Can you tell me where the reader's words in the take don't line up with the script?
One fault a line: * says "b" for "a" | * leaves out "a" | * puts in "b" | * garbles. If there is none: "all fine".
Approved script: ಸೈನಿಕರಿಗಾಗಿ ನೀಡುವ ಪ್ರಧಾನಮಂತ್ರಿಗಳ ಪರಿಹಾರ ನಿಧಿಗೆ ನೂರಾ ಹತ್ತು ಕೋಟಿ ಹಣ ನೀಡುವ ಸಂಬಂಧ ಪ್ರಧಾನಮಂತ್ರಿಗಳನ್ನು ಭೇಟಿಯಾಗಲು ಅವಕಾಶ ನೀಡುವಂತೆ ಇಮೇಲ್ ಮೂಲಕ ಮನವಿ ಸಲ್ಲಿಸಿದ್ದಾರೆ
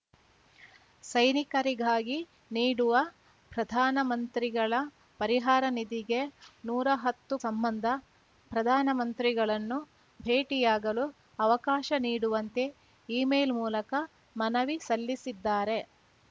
* leaves out "ಕೋಟಿ ಹಣ ನೀಡುವ"